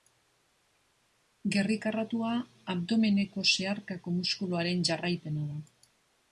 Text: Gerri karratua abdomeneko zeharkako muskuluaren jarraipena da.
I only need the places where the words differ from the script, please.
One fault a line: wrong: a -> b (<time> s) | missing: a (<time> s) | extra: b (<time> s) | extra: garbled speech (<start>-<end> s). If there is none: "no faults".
no faults